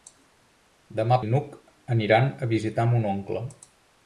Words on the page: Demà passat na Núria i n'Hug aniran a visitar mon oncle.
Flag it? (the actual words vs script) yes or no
yes